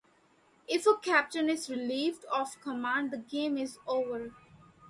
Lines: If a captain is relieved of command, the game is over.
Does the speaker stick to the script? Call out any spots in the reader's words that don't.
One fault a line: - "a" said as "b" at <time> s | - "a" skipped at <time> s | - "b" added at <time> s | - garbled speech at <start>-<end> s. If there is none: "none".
none